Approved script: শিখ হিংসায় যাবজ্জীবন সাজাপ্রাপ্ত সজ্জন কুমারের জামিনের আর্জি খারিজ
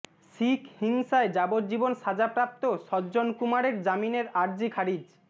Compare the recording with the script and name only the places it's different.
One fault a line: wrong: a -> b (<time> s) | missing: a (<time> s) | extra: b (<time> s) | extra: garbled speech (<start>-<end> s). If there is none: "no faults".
no faults